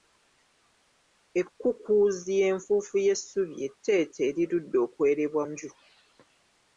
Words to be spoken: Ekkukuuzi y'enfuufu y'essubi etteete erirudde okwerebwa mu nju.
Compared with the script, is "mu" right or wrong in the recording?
wrong